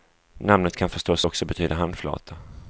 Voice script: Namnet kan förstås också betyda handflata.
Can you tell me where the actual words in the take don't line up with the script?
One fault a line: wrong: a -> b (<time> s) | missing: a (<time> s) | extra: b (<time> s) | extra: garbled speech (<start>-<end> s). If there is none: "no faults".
no faults